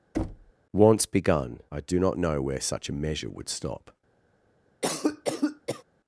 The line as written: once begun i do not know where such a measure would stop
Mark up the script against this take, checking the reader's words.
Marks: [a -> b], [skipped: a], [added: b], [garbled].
once begun i do not know where such a measure would stop